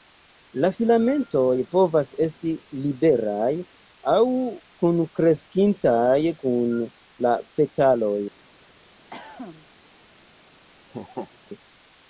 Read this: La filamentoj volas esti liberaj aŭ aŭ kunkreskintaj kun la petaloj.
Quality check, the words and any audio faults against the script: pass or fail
fail